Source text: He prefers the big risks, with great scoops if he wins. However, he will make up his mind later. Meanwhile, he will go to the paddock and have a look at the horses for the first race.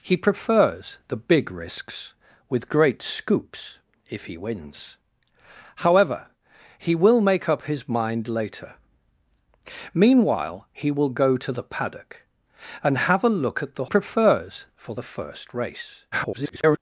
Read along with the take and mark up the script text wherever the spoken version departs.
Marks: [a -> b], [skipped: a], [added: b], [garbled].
He prefers the big risks, with great scoops if he wins. However, he will make up his mind later. Meanwhile, he will go to the paddock and have a look at the [horses -> prefers] for the first race. [garbled]